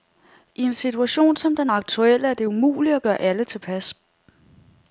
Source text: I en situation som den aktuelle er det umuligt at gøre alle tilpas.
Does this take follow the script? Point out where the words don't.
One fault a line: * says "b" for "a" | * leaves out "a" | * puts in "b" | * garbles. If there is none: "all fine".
all fine